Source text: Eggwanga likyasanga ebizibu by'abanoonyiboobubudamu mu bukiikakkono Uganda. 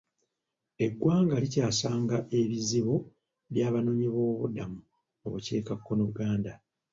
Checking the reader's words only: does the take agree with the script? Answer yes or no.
yes